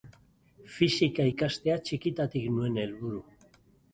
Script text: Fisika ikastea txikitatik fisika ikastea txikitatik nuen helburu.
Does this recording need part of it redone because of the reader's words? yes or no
yes